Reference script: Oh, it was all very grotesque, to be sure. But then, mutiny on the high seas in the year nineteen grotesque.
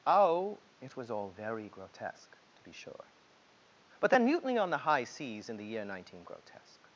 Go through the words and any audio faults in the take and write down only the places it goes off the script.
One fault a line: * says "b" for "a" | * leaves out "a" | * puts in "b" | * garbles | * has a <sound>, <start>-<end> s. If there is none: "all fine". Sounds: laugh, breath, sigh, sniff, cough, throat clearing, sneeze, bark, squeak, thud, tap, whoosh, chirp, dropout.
all fine